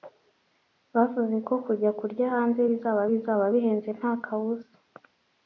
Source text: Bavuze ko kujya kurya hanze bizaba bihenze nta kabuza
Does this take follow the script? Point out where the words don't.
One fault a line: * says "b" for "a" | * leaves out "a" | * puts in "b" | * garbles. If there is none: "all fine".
* puts in "bizaba"